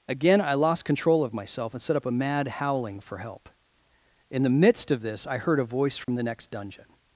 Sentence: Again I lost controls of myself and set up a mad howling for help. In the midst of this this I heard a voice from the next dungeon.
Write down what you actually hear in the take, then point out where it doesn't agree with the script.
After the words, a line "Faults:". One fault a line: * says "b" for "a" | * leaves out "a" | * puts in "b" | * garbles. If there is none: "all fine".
Again I lost control of myself and set up a mad howling for help. In the midst of this I heard a voice from the next dungeon.
Faults:
* says "control" for "controls"
* leaves out "this"